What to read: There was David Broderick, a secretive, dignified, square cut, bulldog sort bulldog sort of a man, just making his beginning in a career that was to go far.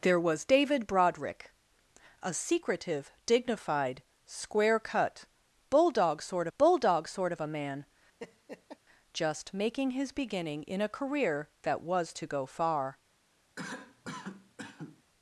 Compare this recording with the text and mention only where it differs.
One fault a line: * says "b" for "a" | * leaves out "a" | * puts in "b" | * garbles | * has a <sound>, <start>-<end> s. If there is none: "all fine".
* has a laugh, 8.2-8.8 s
* has a cough, 13.6-15.0 s